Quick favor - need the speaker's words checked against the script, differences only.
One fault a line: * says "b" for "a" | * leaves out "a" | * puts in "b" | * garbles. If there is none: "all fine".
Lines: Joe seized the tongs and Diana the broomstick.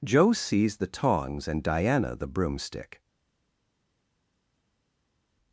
all fine